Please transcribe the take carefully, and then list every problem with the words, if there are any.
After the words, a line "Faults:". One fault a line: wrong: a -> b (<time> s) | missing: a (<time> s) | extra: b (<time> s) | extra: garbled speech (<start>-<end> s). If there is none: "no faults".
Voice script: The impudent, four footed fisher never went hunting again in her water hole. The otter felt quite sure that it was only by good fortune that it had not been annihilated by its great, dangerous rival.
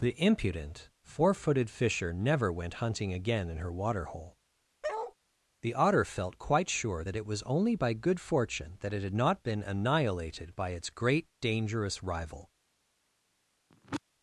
The impudent, four footed fisher never went hunting again in her water hole. The otter felt quite sure that it was only by good fortune that it had not been annihilated by its great, dangerous rival.
Faults:
no faults